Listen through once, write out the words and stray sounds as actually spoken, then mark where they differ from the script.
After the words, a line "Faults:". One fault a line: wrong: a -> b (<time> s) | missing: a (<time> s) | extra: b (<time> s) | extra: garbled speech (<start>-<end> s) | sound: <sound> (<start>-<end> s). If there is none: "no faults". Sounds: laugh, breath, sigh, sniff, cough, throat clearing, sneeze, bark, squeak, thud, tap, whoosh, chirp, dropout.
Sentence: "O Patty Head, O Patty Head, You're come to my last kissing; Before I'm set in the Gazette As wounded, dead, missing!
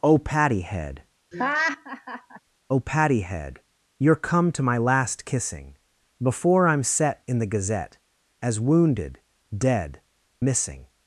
"O Patty Head, O Patty Head, You're come to my last kissing; Before I'm set in the Gazette As wounded, dead, missing!
Faults:
sound: laugh (1.3-2.4 s)